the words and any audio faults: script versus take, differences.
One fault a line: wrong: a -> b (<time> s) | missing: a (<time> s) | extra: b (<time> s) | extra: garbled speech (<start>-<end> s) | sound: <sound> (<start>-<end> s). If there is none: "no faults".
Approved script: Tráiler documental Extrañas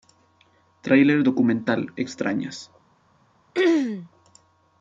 sound: throat clearing (3.5-4.1 s)